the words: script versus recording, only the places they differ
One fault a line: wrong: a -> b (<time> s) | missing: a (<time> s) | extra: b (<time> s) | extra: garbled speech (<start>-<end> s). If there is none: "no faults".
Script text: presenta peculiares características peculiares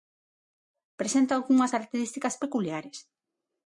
wrong: peculiares -> algunhas (1.4 s)